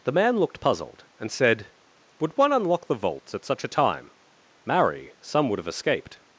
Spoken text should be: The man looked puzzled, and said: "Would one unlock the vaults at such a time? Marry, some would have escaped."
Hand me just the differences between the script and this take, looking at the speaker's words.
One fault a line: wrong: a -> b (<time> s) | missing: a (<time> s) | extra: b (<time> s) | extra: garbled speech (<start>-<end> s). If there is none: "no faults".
no faults